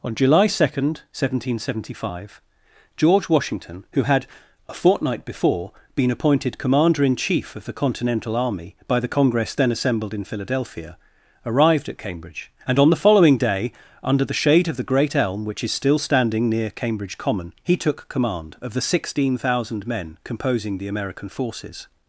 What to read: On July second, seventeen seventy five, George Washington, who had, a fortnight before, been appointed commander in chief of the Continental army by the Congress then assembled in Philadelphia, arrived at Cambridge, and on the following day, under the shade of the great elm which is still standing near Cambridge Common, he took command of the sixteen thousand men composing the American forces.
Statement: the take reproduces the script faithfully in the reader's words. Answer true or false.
true